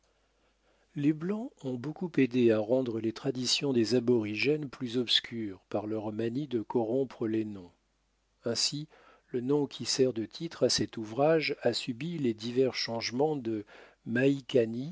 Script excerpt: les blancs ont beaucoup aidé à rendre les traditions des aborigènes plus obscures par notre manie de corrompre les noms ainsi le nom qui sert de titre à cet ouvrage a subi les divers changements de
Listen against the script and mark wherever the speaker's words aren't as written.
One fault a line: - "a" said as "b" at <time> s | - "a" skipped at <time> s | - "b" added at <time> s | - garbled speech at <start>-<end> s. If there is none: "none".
- "notre" said as "leur" at 5.9 s